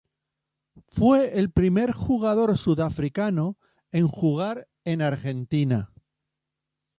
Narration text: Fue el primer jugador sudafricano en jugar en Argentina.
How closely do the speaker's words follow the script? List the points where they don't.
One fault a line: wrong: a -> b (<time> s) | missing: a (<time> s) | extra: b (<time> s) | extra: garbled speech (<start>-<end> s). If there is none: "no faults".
no faults